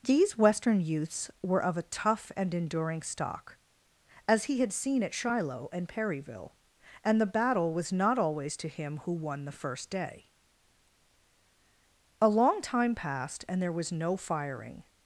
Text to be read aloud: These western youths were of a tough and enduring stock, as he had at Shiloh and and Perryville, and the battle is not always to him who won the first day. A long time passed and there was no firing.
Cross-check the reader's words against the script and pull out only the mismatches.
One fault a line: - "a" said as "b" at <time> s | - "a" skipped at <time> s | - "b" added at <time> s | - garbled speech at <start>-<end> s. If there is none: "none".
- "seen" added at 4.7 s
- "and" skipped at 5.9 s
- "is" said as "was" at 7.7 s